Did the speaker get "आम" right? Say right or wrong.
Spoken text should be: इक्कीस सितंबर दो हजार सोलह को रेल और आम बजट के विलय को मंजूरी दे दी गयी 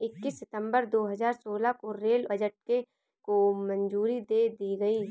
wrong